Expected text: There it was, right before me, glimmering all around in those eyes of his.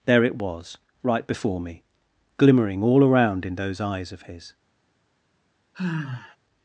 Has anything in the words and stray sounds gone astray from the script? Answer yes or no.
yes